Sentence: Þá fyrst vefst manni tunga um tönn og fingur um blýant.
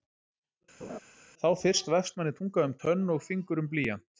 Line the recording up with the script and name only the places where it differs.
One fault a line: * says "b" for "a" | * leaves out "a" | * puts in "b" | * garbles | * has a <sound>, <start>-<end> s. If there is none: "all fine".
* has a laugh, 0.8-1.0 s